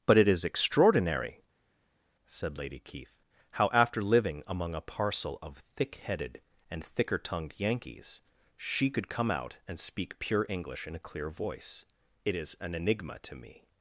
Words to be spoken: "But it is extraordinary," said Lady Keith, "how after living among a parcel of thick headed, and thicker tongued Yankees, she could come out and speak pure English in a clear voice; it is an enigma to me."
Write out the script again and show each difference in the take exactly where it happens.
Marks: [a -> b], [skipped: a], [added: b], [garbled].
"But it is extraordinary," said Lady Keith, "how after living among a parcel of thick headed, and thicker tongued Yankees, she could come out and speak pure English in a clear voice; it is an enigma to me."